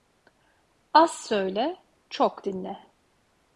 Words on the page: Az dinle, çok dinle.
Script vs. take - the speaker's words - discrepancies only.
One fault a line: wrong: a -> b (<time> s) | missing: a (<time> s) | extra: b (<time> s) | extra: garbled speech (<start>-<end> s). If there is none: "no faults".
wrong: dinle -> söyle (1.1 s)